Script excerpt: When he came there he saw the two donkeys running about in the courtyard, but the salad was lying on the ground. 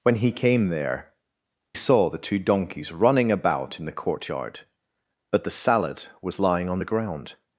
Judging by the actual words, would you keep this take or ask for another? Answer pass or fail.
fail